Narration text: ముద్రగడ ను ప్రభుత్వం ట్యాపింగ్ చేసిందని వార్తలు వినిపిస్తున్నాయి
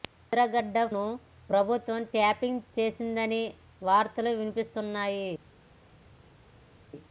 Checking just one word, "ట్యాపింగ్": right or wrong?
right